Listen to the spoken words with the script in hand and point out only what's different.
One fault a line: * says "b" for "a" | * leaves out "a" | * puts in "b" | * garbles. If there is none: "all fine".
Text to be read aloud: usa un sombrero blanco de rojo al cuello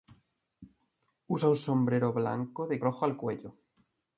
all fine